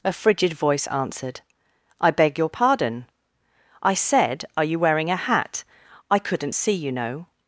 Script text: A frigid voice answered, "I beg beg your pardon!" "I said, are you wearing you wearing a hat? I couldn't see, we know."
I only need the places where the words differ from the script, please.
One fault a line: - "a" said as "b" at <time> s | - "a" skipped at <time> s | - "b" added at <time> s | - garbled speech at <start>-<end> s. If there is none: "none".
- "beg" skipped at 2.4 s
- "you wearing" skipped at 5.1 s
- "we" said as "you" at 6.7 s